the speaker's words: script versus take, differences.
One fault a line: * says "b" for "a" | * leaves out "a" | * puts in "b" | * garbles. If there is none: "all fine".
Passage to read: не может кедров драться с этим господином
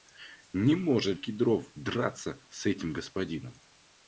all fine